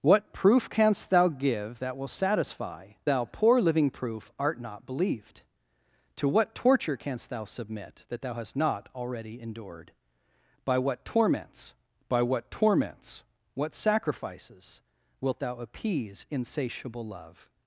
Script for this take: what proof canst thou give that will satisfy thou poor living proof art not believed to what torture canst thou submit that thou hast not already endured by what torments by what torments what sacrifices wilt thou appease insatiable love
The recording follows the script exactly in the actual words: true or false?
true